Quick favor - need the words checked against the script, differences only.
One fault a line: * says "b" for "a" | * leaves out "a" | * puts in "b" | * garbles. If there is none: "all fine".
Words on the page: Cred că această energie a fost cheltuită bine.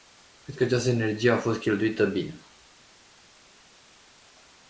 all fine